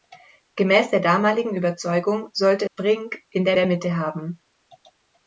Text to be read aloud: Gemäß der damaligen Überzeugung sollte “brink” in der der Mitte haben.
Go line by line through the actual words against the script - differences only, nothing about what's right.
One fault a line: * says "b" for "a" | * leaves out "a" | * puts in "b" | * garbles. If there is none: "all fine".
all fine